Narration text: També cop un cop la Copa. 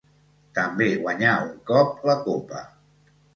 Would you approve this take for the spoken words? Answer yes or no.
no